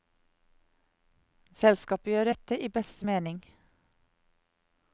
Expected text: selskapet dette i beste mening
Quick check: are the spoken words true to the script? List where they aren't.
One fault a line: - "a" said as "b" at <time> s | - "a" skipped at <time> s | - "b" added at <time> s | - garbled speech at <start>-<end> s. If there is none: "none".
- "gjør" added at 2.1 s